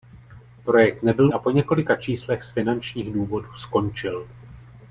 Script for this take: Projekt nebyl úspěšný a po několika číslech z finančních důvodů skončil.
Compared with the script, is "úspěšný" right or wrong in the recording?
wrong